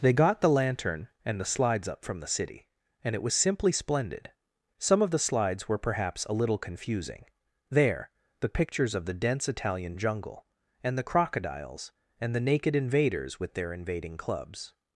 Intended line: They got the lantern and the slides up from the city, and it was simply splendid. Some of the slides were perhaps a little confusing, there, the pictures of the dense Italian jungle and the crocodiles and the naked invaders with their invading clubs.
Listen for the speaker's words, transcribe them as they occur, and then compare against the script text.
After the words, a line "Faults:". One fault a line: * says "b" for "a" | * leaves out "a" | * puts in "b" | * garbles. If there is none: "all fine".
They got the lantern and the slides up from the city, and it was simply splendid. Some of the slides were perhaps a little confusing, there, the pictures of the dense Italian jungle and the crocodiles and the naked invaders with their invading clubs.
Faults:
all fine